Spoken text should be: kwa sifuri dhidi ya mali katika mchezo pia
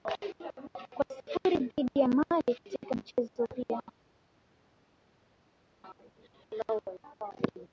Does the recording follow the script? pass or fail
pass